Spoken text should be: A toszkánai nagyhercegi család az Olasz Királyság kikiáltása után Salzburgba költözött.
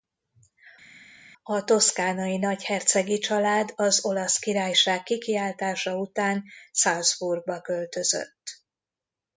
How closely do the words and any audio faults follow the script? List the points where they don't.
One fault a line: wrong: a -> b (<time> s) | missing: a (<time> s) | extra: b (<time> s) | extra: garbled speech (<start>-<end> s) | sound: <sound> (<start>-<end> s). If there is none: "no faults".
no faults